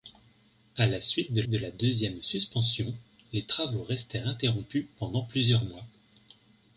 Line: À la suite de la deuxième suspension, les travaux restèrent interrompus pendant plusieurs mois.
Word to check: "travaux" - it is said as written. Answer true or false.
true